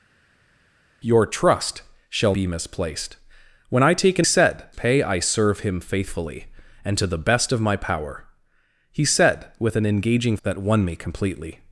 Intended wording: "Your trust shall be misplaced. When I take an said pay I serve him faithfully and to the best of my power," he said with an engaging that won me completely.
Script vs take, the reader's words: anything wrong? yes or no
no